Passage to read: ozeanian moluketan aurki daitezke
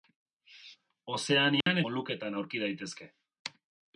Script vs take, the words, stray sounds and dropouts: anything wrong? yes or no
yes